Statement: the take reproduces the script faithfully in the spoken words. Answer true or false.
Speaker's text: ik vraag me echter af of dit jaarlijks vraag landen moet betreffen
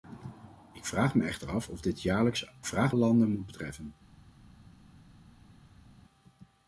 true